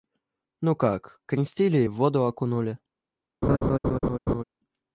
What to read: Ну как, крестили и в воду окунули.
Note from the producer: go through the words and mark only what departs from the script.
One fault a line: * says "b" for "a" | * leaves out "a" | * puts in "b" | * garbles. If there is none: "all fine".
all fine